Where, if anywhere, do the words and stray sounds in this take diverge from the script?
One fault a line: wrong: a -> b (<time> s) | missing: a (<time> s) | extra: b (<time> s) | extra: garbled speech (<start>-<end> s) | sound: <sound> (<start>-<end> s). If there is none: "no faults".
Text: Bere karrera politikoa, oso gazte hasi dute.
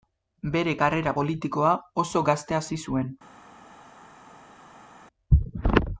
wrong: dute -> zuen (2.9 s)